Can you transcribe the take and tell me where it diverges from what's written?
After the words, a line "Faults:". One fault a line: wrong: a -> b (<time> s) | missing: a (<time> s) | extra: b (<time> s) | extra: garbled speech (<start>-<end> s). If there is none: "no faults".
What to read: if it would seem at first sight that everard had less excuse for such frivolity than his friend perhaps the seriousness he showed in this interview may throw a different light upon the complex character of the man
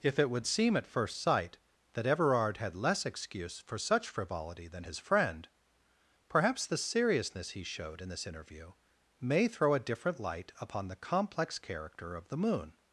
if it would seem at first sight that everard had less excuse for such frivolity than his friend perhaps the seriousness he showed in this interview may throw a different light upon the complex character of the moon
Faults:
wrong: man -> moon (12.4 s)